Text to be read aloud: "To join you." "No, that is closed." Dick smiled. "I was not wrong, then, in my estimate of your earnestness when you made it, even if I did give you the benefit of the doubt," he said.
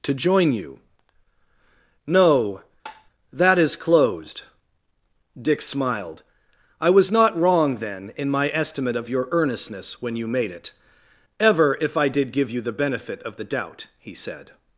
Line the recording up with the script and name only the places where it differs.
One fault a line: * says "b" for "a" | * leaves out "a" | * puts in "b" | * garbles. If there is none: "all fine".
* says "ever" for "even"